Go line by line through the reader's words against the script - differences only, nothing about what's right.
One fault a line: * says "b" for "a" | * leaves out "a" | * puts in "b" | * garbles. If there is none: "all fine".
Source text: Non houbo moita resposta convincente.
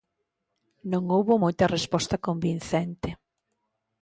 all fine